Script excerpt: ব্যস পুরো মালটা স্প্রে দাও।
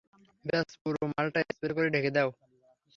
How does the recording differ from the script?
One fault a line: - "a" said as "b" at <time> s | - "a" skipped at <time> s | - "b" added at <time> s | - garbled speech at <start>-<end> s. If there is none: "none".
- "করে ঢেকে" added at 1.8 s